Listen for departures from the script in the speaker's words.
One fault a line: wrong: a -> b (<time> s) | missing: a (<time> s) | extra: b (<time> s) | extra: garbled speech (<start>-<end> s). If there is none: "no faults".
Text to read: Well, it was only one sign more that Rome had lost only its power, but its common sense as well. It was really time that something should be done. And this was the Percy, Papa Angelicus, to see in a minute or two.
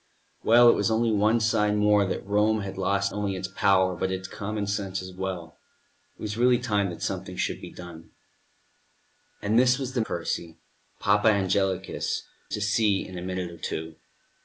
no faults